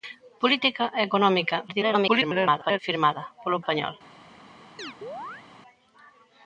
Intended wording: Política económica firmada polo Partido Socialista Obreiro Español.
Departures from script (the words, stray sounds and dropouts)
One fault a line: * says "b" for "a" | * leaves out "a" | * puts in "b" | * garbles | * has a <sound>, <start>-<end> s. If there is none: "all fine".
* garbles
* leaves out "Partido Socialista Obreiro"
* has a chirp, 4.8-5.5 s